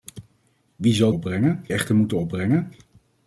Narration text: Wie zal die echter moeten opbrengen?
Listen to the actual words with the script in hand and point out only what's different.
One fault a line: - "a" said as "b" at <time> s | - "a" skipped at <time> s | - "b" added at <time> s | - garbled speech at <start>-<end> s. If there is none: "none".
- "die" said as "opbrengen" at 1.1 s